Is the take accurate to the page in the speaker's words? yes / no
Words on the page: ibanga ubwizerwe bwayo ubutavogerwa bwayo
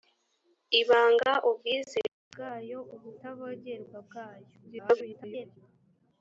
no